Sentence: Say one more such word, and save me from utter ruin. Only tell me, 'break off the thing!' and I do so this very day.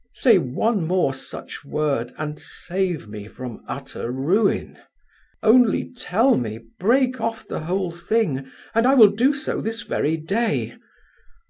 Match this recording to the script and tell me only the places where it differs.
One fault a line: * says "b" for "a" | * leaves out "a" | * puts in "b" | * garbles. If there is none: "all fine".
* puts in "whole"
* puts in "will"